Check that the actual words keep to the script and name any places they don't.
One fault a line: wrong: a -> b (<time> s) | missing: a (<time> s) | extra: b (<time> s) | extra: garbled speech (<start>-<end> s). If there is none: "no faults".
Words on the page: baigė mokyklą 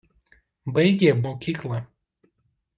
no faults